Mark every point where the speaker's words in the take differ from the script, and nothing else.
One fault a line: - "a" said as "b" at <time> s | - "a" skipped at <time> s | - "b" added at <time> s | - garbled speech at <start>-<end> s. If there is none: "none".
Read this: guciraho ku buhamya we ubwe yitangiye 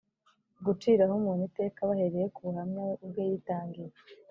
- "umuntu iteka bahereye" added at 1.2 s